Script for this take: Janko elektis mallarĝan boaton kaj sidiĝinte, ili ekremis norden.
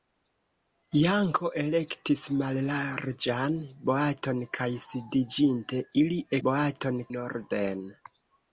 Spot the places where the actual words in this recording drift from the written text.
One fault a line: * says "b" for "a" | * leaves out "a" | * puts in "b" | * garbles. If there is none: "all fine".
* says "boaton" for "ekremis"